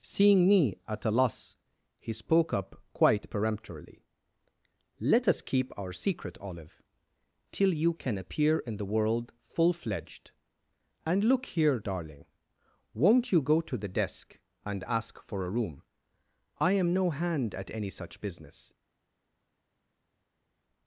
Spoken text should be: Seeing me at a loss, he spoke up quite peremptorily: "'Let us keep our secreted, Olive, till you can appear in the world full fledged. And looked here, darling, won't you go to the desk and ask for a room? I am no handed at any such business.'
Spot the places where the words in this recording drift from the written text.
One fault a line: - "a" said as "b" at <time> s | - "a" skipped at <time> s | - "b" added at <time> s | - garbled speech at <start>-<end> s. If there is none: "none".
- "secreted" said as "secret" at 5.9 s
- "looked" said as "look" at 11.2 s
- "handed" said as "hand" at 17.1 s